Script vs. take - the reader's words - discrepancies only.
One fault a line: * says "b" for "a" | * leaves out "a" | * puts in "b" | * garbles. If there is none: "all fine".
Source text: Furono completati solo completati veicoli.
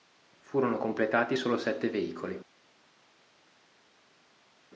* says "sette" for "completati"